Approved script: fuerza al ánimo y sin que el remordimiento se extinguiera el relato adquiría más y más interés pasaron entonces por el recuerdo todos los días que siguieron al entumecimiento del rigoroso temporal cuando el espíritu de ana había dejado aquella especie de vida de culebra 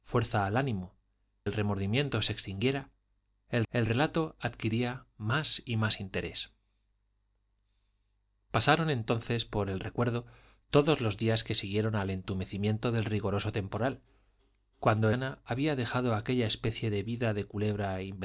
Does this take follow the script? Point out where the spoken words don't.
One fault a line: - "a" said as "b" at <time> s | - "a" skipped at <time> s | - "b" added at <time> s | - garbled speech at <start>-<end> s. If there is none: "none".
- "y sin que" skipped at 0.9 s
- "el" added at 3.7 s
- "el espíritu de" skipped at 15.1 s